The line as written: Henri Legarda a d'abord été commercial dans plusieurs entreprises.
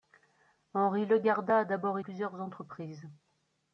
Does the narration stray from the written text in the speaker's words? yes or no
yes